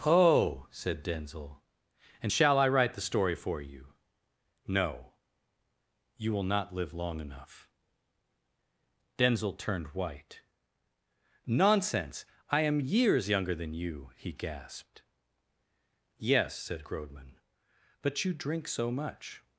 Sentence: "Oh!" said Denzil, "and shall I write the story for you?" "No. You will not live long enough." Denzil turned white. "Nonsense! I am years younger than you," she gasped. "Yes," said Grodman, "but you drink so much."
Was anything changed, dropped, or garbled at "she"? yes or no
yes